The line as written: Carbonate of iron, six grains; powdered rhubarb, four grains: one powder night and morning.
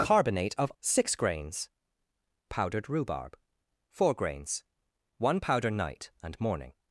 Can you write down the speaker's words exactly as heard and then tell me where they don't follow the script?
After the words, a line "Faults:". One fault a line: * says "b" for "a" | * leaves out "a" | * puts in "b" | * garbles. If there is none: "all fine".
Carbonate of six grains; powdered rhubarb, four grains: one powder night and morning.
Faults:
* leaves out "iron"